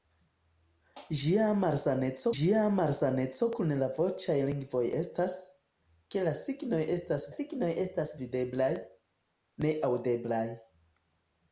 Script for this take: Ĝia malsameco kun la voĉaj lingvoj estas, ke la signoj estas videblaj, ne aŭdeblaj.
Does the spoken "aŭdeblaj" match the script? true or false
true